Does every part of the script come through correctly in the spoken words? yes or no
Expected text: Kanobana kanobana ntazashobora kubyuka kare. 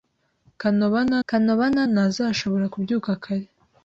yes